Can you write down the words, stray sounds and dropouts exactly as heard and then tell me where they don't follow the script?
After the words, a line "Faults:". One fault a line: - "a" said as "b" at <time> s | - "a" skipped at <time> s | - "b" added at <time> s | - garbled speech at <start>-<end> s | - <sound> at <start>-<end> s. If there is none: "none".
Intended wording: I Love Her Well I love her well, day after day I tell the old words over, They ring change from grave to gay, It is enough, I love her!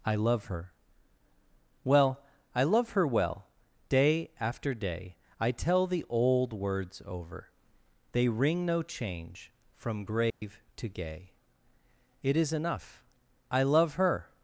I Love Her Well I love her well, day after day I tell the old words over, They ring no change from grave to gay, It is enough, I love her!
Faults:
- "no" added at 8.7 s
- dropout at 10.3-10.4 s